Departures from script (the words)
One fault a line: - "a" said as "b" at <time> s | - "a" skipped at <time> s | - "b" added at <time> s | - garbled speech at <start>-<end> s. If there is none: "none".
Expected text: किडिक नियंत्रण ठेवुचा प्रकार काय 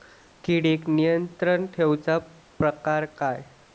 none